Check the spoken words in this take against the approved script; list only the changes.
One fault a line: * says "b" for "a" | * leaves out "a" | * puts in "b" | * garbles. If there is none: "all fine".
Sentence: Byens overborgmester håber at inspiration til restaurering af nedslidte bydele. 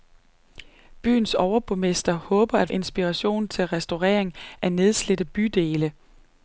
all fine